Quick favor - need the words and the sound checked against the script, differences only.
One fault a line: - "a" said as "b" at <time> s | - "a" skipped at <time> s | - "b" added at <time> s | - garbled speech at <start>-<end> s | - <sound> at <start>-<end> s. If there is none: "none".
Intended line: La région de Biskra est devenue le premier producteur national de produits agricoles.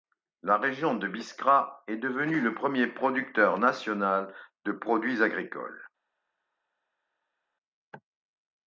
none